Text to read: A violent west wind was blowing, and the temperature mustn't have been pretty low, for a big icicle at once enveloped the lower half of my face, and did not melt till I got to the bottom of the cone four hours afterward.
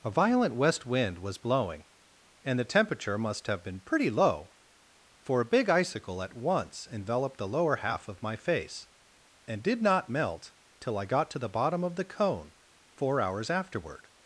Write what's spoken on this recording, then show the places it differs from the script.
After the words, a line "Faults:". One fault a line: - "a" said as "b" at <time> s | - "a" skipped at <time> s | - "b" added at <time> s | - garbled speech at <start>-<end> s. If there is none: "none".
A violent west wind was blowing, and the temperature must have been pretty low, for a big icicle at once enveloped the lower half of my face, and did not melt till I got to the bottom of the cone four hours afterward.
Faults:
- "mustn't" said as "must" at 3.2 s